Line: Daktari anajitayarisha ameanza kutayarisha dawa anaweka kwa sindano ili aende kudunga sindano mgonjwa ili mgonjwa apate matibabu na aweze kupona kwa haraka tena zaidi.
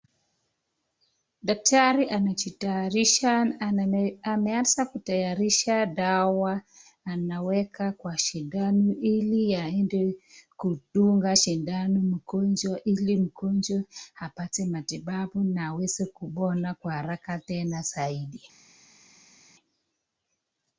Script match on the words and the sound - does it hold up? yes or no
yes